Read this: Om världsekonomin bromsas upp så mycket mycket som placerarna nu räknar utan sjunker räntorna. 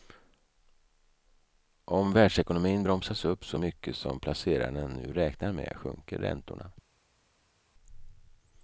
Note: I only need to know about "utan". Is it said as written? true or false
false